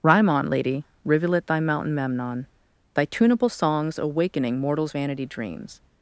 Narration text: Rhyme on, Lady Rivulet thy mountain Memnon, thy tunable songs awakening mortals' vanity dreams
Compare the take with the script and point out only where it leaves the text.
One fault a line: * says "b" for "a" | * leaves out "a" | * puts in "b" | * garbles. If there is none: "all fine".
all fine